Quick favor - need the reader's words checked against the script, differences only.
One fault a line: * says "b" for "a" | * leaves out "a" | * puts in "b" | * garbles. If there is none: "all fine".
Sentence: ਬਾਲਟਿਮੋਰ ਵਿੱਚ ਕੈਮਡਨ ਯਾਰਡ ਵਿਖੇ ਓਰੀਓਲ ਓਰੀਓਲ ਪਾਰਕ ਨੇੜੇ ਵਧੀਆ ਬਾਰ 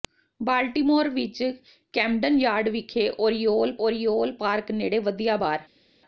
all fine